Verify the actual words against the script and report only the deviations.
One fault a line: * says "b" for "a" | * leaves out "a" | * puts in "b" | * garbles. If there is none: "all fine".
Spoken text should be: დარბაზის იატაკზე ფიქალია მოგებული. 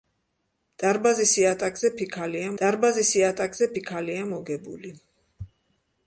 * puts in "დარბაზის იატაკზე ფიქალია"